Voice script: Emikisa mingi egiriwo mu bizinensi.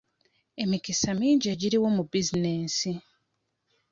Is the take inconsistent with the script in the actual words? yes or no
no